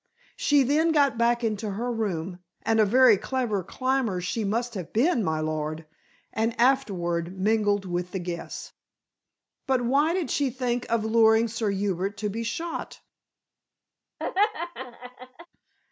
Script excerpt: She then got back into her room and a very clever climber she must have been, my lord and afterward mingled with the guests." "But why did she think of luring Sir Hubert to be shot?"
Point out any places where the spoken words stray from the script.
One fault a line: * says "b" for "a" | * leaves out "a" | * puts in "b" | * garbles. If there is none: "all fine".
all fine